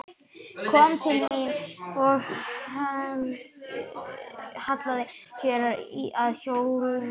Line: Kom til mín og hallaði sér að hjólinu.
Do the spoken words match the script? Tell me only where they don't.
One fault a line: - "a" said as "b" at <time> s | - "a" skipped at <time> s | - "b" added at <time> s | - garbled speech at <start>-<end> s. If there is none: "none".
none